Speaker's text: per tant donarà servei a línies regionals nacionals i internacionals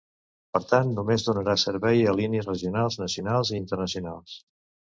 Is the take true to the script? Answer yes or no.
no